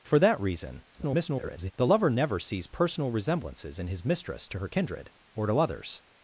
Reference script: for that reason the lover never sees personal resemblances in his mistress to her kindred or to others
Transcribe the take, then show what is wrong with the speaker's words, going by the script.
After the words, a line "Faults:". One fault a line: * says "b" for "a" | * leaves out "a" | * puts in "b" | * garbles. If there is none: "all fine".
for that reason [garbled] the lover never sees personal resemblances in his mistress to her kindred or to others
Faults:
* garbles